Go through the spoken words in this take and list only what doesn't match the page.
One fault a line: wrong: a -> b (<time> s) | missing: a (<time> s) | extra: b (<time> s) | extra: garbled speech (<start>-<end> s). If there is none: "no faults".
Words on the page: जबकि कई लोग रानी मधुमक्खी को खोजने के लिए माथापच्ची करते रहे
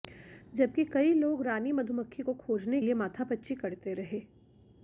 missing: के (2.8 s)